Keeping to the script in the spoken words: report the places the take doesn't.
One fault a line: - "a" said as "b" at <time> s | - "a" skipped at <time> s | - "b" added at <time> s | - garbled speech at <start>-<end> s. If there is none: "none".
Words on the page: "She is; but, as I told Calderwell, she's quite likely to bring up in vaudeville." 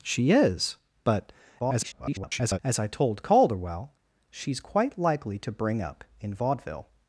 - garbled speech at 1.6-2.6 s